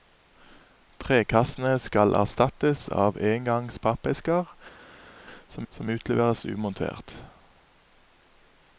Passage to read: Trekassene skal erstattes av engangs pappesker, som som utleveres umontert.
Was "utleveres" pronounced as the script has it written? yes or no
yes